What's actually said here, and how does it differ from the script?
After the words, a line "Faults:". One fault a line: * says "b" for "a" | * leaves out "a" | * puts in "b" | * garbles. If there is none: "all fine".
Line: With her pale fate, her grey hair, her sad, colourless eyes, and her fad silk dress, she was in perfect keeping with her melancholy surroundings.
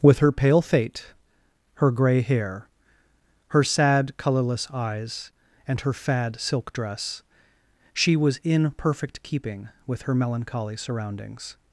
With her pale fate, her grey hair, her sad, colourless eyes, and her fad silk dress, she was in perfect keeping with her melancholy surroundings.
Faults:
all fine